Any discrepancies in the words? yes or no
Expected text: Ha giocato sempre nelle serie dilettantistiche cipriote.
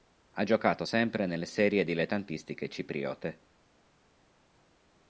no